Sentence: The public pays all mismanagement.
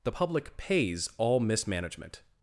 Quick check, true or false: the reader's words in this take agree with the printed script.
true